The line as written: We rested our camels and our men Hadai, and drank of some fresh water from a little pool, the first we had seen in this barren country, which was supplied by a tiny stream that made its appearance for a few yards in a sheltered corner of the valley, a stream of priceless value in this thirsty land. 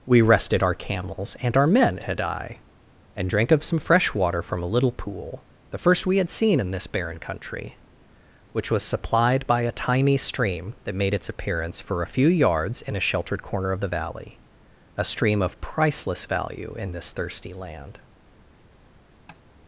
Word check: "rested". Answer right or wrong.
right